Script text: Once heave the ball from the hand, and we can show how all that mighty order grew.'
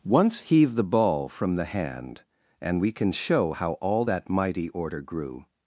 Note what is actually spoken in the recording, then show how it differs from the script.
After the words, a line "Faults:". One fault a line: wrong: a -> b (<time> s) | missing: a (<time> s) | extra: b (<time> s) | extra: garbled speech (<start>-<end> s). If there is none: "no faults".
Once heave the ball from the hand, and we can show how all that mighty order grew.'
Faults:
no faults